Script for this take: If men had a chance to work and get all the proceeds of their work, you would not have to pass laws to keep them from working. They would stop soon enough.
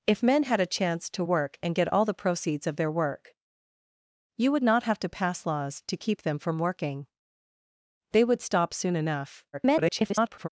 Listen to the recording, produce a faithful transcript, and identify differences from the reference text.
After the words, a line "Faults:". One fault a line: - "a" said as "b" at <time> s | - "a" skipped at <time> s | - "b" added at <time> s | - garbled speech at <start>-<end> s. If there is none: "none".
If men had a chance to work and get all the proceeds of their work, you would not have to pass laws to keep them from working. They would stop soon enough. [garbled]
Faults:
- garbled speech at 9.5-10.5 s